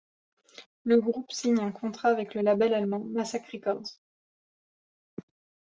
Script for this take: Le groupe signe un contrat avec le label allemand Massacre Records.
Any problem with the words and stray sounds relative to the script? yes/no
no